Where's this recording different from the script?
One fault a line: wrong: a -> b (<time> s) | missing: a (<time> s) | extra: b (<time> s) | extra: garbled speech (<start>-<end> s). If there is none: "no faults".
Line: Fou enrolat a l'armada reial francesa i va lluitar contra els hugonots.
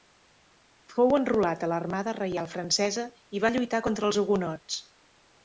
no faults